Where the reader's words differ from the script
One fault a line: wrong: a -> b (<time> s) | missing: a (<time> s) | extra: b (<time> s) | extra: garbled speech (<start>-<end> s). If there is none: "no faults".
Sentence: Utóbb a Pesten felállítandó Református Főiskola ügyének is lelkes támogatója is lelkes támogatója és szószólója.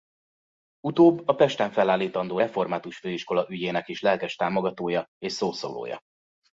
missing: is lelkes támogatója (5.1 s)